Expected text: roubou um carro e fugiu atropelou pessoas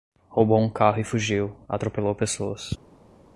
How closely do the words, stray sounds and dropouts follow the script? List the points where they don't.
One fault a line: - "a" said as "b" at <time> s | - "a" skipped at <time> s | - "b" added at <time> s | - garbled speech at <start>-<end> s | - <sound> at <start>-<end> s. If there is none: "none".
none